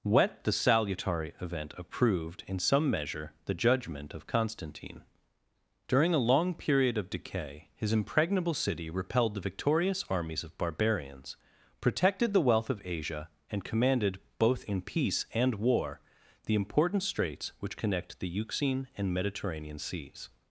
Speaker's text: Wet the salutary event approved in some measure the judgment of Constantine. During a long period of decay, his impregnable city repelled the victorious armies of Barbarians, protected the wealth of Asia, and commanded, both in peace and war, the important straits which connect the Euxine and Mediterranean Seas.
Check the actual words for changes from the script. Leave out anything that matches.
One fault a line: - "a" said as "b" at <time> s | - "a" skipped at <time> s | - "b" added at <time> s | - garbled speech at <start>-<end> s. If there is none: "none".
none